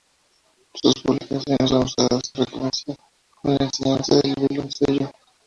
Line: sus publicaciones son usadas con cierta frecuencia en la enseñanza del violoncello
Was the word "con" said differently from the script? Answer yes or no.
yes